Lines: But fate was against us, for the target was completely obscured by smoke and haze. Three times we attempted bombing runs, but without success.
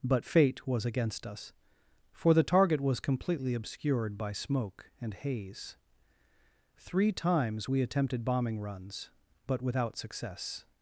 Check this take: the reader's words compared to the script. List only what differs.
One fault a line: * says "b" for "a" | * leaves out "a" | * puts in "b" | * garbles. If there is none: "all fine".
all fine